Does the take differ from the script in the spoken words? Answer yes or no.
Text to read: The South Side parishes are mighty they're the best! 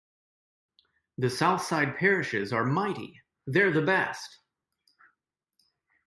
no